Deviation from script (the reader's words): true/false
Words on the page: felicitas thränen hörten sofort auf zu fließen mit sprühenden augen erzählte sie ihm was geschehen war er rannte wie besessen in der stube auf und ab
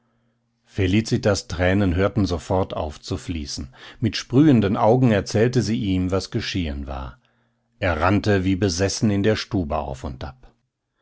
false